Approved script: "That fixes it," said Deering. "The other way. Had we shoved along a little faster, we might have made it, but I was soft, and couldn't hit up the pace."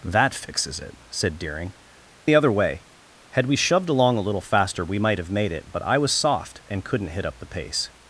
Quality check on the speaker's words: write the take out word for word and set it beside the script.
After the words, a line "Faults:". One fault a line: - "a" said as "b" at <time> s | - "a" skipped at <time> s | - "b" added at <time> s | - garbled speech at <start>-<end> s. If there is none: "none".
"That fixes it," said Deering. "The other way. Had we shoved along a little faster, we might have made it, but I was soft, and couldn't hit up the pace."
Faults:
none